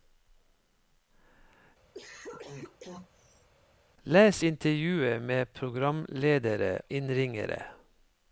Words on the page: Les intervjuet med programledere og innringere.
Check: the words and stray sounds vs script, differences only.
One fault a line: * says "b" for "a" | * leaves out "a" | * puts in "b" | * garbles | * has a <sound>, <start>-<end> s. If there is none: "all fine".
* has a cough, 1.9-3.5 s
* leaves out "og"